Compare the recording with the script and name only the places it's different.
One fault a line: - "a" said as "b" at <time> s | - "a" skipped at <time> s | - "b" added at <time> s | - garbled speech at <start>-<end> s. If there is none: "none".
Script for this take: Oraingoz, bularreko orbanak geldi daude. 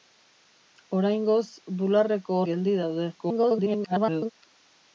- "orbanak" skipped at 2.4 s
- garbled speech at 3.2-4.3 s